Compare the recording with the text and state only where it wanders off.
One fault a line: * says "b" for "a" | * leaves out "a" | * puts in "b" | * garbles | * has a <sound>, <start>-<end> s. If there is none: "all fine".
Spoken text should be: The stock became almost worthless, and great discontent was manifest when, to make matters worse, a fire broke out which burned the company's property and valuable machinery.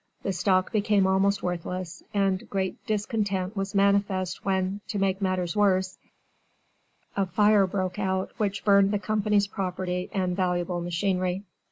all fine